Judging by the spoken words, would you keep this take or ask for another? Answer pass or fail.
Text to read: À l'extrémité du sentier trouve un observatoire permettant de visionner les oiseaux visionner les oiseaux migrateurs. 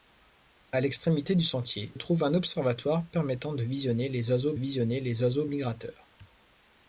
pass